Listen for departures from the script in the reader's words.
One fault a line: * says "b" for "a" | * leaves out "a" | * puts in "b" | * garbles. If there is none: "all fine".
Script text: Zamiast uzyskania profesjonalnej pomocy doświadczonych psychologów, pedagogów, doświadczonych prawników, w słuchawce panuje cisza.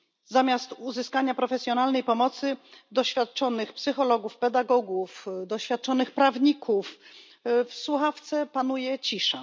all fine